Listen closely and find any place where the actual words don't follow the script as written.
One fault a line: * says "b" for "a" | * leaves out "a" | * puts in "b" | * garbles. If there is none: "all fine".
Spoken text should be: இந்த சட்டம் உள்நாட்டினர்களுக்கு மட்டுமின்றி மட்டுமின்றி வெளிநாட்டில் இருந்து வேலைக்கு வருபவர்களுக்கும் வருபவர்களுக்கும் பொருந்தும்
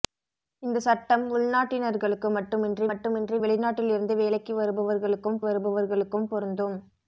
all fine